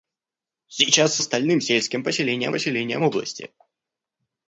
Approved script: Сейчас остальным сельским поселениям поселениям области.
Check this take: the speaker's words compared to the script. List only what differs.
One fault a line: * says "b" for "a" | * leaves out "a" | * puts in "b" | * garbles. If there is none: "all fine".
all fine